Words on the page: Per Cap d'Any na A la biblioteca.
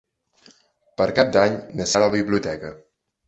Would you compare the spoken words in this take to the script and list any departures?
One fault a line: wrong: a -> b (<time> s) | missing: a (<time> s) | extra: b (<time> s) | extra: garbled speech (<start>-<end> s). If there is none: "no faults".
no faults